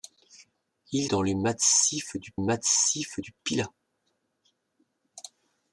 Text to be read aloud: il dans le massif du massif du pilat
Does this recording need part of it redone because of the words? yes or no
no